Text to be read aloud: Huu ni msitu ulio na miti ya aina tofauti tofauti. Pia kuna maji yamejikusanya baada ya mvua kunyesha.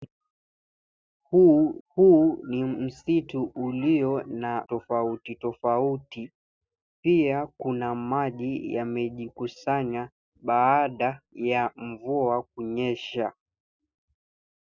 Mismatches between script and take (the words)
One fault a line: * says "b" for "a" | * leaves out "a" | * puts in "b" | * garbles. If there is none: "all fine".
* puts in "huu"
* leaves out "miti ya aina"